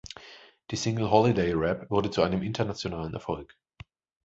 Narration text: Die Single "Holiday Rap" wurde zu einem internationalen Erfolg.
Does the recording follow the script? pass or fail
pass